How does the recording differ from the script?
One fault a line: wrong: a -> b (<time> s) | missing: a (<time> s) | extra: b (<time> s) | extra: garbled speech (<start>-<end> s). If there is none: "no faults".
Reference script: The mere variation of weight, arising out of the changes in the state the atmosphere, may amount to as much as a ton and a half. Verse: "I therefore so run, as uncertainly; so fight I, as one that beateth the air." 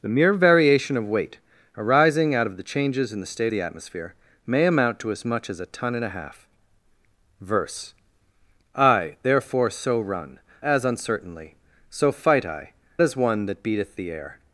no faults